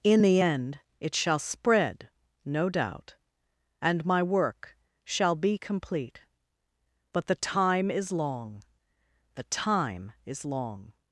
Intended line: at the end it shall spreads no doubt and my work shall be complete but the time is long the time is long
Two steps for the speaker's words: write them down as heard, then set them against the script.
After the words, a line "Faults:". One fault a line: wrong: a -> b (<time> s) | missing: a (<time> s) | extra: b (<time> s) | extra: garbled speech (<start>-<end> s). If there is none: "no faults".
in the end it shall spread no doubt and my work shall be complete but the time is long the time is long
Faults:
wrong: at -> in (0.0 s)
wrong: spreads -> spread (1.4 s)